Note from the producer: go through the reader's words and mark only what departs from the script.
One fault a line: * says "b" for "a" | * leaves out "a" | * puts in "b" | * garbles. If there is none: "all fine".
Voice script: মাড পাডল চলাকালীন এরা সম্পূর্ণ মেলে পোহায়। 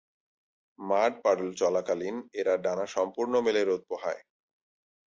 * puts in "ডানা"
* puts in "রোদ"